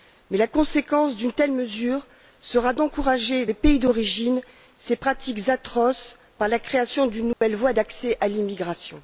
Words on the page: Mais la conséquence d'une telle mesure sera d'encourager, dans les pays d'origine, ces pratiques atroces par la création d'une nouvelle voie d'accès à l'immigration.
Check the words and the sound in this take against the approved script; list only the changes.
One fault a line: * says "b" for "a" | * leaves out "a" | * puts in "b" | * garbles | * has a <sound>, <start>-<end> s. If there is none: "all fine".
* leaves out "dans"
* has a dropout, 7.3-7.4 s